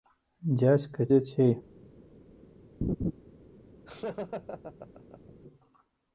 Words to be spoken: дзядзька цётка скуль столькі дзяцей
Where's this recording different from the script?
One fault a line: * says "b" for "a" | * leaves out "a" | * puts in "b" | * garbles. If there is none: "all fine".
* leaves out "цётка скуль столькі"